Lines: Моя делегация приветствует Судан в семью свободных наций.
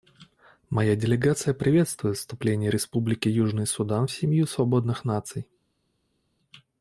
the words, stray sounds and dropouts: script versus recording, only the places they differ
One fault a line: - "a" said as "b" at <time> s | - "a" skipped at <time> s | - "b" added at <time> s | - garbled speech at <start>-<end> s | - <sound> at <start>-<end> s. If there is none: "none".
- "вступление Республики Южный" added at 2.2 s